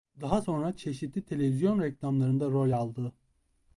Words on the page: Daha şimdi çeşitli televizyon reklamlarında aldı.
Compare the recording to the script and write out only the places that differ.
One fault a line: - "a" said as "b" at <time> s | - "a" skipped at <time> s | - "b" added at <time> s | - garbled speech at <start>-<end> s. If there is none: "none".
- "şimdi" said as "sonra" at 0.4 s
- "rol" added at 2.5 s